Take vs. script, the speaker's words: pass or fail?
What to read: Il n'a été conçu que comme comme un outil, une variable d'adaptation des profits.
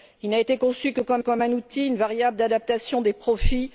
pass